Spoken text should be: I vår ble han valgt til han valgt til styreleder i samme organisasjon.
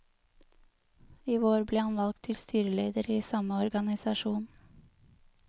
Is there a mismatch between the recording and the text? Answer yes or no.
yes